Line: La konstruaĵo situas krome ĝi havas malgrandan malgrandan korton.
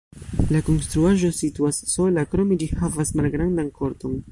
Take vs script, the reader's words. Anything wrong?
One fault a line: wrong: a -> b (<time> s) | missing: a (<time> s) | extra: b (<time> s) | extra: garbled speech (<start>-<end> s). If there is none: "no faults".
extra: sola (2.0 s)
missing: malgrandan (3.8 s)